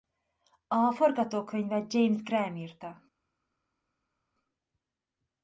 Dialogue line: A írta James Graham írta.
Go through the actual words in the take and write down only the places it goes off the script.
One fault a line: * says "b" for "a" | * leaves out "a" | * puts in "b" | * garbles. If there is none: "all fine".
* says "forgatókönyvet" for "írta"